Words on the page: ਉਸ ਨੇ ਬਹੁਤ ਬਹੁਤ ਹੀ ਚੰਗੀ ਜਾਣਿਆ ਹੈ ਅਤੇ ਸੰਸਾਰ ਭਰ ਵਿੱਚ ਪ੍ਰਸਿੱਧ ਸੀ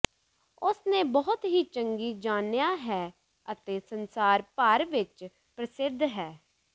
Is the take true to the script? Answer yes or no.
no